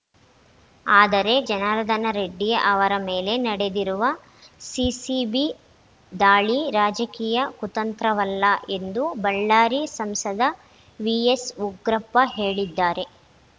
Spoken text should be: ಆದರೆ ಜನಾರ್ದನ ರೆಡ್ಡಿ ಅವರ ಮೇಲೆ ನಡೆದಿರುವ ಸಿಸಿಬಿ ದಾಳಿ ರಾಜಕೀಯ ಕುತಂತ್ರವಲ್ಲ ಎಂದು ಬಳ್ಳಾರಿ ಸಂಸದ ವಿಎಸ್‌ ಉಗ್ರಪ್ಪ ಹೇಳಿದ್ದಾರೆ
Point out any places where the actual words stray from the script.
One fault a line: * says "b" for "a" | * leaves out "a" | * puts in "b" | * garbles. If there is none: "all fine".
all fine